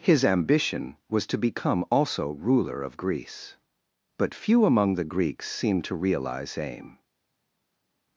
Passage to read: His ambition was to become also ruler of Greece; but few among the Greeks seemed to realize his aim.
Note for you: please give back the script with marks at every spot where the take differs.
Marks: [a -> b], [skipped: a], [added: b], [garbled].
His ambition was to become also ruler of Greece; but few among the Greeks seemed to realize [skipped: his] aim.